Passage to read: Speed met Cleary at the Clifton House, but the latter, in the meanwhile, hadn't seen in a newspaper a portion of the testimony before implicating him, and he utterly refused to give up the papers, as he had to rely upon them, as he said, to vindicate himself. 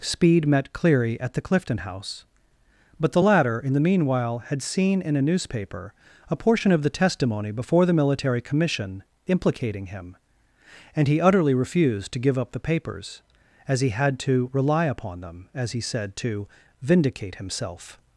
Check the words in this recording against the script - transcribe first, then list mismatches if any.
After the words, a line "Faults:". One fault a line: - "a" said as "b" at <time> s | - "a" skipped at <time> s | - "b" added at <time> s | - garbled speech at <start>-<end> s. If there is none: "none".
Speed met Cleary at the Clifton House, but the latter, in the meanwhile, had seen in a newspaper a portion of the testimony before the Military Commission implicating him, and he utterly refused to give up the papers, as he had to rely upon them, as he said, to vindicate himself.
Faults:
- "hadn't" said as "had" at 4.5 s
- "the Military Commission" added at 7.8 s